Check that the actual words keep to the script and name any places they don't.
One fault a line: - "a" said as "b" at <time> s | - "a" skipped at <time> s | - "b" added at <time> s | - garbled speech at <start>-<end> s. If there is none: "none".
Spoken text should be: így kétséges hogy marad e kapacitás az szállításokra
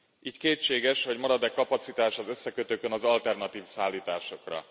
- "összekötőkön az alternatív" added at 2.3 s